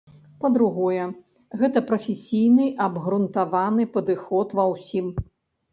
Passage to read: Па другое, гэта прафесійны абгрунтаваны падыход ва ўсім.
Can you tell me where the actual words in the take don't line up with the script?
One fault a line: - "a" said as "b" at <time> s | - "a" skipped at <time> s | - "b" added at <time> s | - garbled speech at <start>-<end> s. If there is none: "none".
none